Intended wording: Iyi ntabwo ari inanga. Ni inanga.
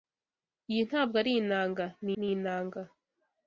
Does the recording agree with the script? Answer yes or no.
no